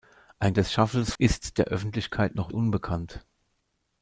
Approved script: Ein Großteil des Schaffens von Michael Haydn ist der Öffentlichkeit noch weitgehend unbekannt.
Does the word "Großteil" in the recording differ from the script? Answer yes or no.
yes